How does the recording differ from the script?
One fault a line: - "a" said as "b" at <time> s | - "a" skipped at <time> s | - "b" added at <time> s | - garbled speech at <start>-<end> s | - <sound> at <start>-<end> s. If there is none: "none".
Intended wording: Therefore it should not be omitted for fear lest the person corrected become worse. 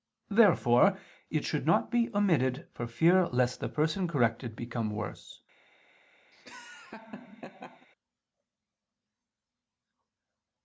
- laugh at 6.3-7.9 s